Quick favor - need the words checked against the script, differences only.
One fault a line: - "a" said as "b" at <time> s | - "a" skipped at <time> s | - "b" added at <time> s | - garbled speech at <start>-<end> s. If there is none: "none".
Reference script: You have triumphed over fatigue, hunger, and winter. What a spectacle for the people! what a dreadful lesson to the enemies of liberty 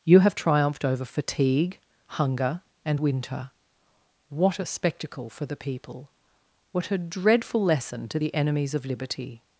none